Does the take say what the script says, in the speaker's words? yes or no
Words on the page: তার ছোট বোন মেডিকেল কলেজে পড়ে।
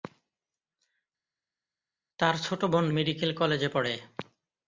yes